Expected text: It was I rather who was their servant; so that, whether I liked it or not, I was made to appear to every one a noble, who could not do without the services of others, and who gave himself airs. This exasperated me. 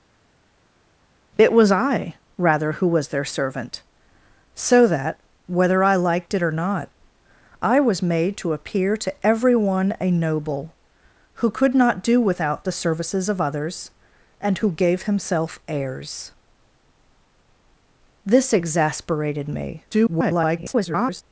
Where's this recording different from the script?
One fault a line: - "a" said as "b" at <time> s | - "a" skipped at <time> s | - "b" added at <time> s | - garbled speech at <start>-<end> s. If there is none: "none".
- garbled speech at 19.9-21.2 s